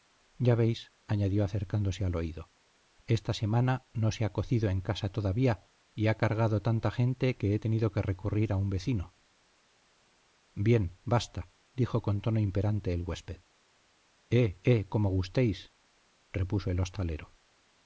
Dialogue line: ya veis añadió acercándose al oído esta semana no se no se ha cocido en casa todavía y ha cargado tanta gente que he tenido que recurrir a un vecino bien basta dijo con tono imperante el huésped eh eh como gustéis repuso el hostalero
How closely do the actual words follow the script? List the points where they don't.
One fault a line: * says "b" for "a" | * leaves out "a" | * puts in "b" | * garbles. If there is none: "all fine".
* leaves out "no se"